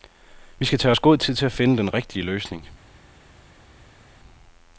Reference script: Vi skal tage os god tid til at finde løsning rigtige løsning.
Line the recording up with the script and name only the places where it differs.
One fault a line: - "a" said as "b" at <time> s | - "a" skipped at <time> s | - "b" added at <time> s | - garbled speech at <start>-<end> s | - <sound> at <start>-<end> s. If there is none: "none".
- "løsning" said as "den" at 1.8 s